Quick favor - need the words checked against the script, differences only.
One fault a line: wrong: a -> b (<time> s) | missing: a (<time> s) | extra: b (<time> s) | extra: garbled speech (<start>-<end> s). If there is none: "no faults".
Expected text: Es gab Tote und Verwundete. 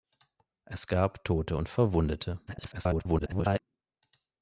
extra: garbled speech (2.5-3.6 s)